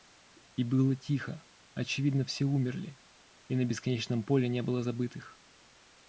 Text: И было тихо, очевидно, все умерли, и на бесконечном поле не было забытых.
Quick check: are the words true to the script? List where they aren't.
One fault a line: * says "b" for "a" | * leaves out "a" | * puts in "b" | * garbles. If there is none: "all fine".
all fine